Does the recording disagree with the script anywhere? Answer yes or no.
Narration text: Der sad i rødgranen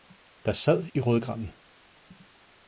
no